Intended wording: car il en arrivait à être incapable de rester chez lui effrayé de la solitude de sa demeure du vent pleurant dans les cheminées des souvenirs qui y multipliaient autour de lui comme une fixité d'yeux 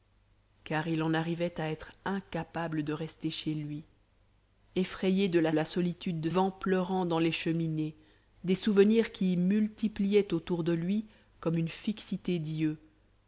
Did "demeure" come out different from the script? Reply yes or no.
yes